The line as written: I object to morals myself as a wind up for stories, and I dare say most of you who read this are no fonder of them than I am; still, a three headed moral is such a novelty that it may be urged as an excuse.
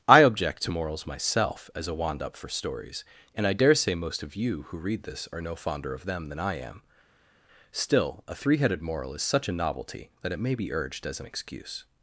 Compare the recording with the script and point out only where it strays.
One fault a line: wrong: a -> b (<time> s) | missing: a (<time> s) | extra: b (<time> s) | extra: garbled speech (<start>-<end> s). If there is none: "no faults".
wrong: wind -> wand (1.9 s)